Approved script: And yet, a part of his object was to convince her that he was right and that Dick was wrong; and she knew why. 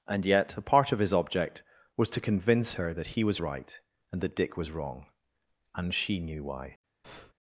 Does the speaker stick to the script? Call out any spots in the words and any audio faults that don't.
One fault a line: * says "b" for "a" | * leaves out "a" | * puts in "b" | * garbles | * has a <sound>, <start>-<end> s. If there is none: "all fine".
* has a breath, 7.0-7.3 s